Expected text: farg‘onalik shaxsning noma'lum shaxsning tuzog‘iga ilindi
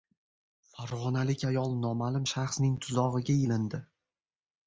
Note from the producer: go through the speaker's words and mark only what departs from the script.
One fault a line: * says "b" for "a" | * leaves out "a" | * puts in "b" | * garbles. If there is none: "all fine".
* says "ayol" for "shaxsning"